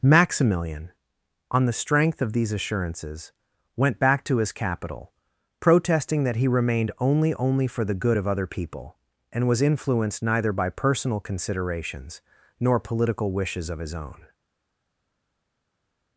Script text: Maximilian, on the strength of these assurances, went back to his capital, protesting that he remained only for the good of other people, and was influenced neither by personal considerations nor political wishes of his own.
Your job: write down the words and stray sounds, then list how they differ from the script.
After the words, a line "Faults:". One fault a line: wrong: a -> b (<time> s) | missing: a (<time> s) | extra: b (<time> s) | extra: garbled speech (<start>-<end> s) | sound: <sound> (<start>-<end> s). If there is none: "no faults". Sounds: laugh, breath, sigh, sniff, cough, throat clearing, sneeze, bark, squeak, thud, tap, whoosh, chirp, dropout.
Maximilian, on the strength of these assurances, went back to his capital, protesting that he remained only only for the good of other people, and was influenced neither by personal considerations nor political wishes of his own.
Faults:
extra: only (7.3 s)